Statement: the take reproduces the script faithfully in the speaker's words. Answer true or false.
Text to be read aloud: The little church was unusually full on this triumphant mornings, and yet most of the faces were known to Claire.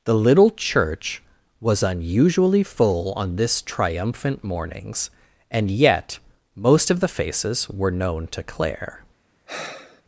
true